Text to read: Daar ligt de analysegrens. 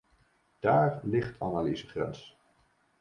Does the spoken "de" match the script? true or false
false